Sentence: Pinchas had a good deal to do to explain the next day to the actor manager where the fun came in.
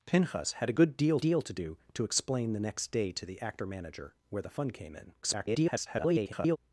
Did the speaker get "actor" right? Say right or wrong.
right